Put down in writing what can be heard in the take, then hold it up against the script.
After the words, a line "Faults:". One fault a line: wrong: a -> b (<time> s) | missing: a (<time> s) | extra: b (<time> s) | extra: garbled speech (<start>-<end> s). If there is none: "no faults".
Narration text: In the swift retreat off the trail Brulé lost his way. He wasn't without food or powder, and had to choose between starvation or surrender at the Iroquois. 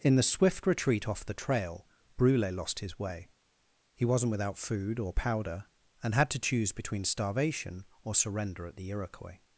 In the swift retreat off the trail Brulé lost his way. He wasn't without food or powder, and had to choose between starvation or surrender at the Iroquois.
Faults:
no faults